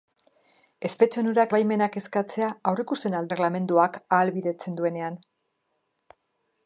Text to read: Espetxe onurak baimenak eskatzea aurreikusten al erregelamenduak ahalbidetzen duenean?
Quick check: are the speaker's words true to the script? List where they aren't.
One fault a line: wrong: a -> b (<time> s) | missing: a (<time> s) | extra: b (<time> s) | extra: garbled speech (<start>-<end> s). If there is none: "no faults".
no faults